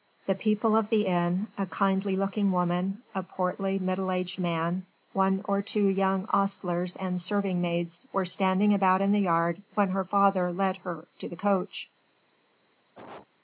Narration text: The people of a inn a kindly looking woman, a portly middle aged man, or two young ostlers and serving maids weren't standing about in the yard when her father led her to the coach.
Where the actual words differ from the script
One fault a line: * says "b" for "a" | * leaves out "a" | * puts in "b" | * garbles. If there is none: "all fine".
* says "the" for "a"
* puts in "one"
* says "were" for "weren't"